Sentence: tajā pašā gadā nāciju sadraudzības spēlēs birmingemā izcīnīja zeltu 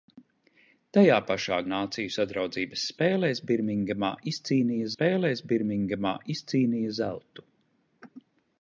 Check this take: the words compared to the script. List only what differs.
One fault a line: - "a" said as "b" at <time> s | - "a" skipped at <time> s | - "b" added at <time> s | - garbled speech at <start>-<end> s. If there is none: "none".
- "gadā" skipped at 1.6 s
- "spēlēs birmingemā izcīnīja" added at 4.9 s